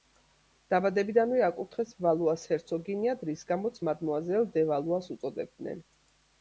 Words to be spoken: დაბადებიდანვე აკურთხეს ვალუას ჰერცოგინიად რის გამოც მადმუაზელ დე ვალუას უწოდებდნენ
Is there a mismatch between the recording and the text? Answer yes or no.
no